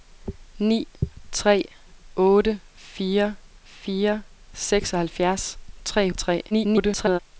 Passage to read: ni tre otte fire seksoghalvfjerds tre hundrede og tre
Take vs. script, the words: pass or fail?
fail